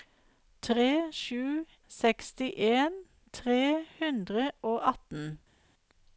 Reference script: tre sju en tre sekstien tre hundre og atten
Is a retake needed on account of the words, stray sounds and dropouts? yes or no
yes